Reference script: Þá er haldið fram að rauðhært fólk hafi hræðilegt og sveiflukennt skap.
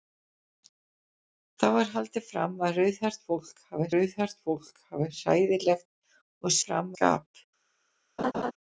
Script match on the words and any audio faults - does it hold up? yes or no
no